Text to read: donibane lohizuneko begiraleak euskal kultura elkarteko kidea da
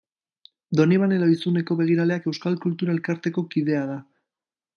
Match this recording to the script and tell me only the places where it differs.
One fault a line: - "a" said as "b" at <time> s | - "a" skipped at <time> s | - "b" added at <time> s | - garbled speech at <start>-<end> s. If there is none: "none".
none